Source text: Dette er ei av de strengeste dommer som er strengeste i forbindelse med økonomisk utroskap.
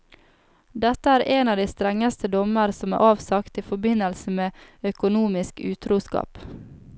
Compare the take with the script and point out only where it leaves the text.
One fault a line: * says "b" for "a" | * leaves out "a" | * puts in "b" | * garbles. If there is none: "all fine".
* says "en" for "ei"
* says "avsagt" for "strengeste"